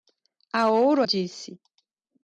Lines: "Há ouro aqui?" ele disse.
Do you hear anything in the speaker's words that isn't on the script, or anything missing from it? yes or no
yes